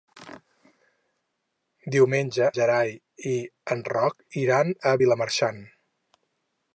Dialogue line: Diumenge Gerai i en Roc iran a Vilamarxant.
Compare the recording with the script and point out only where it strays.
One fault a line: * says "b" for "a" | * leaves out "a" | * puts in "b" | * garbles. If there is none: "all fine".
all fine